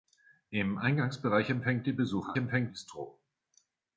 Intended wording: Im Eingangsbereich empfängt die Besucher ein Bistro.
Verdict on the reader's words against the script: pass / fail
fail